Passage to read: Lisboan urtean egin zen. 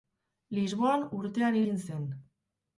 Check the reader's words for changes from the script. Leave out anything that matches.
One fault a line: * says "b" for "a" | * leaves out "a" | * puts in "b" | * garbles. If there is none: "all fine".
all fine